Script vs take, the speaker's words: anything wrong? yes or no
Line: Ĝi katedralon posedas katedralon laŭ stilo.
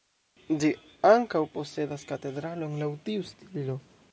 yes